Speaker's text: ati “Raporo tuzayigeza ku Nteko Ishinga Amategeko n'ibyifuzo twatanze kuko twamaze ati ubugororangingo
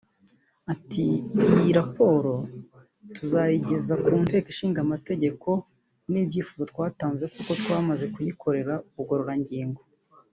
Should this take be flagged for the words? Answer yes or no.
yes